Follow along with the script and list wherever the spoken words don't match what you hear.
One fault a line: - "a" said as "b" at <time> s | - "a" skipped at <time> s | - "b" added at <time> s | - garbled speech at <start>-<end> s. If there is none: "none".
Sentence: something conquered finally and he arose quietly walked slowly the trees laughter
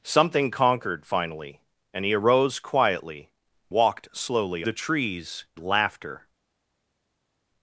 none